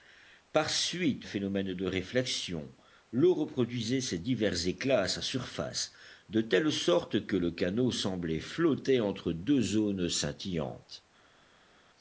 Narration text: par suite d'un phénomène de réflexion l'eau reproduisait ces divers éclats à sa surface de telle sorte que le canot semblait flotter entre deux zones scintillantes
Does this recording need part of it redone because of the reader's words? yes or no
yes